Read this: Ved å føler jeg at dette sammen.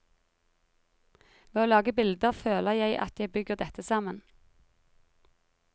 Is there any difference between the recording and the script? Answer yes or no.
yes